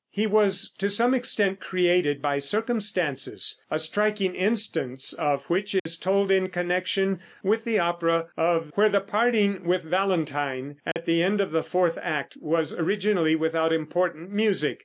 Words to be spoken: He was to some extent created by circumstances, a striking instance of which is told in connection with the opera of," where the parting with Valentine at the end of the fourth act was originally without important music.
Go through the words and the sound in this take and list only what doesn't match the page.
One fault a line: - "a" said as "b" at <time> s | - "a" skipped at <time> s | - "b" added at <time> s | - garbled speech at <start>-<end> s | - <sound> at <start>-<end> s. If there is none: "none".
- dropout at 5.8-5.9 s
- dropout at 10.9-11.0 s